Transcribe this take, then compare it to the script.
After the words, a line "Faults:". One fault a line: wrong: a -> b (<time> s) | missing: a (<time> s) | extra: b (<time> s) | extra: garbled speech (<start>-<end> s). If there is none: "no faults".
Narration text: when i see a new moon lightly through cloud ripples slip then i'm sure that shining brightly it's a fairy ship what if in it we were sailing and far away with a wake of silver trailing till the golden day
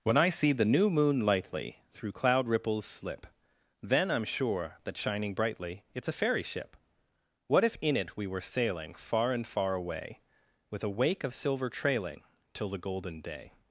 when i see the new moon lightly through cloud ripples slip then i'm sure that shining brightly it's a fairy ship what if in it we were sailing far and far away with a wake of silver trailing till the golden day
Faults:
wrong: a -> the (0.5 s)
extra: far (8.9 s)